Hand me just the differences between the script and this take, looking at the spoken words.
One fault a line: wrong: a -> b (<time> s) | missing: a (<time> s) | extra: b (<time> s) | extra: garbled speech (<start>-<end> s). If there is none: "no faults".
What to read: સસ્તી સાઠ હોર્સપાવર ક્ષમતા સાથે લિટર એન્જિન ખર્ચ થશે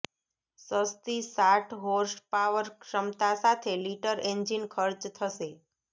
no faults